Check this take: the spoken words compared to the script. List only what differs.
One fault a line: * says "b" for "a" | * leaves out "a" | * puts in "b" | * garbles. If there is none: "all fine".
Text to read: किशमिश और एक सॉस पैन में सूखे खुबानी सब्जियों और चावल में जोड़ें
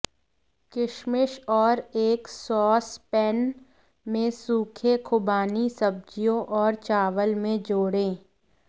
all fine